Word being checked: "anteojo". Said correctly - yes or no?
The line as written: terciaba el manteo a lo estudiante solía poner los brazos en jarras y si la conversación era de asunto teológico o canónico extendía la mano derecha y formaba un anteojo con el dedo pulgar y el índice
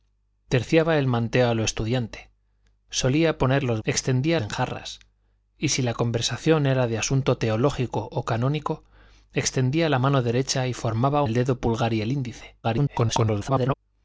no